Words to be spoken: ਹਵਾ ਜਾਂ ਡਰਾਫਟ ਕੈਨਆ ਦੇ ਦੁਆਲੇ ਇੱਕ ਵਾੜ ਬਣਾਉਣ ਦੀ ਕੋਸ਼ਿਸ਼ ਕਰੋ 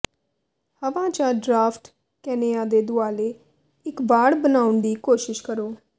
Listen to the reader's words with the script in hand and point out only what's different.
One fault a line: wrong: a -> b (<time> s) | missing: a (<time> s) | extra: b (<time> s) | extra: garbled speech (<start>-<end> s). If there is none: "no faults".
no faults